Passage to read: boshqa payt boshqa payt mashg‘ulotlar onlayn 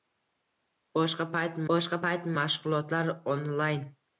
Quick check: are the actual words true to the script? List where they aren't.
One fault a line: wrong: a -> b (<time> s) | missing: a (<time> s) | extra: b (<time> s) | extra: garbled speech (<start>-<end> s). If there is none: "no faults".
no faults